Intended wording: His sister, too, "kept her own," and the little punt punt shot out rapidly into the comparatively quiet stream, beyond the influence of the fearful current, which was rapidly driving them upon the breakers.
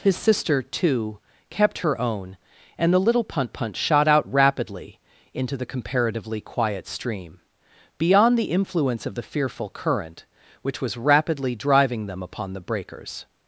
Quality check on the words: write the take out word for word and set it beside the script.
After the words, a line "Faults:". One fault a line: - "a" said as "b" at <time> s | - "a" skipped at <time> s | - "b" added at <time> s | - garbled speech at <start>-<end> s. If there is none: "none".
His sister, too, "kept her own," and the little punt punt shot out rapidly into the comparatively quiet stream, beyond the influence of the fearful current, which was rapidly driving them upon the breakers.
Faults:
none